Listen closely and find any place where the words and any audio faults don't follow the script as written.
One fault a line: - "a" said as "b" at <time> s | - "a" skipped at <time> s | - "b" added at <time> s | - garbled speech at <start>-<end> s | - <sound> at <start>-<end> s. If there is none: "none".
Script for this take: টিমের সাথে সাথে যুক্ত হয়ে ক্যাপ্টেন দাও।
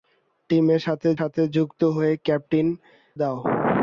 none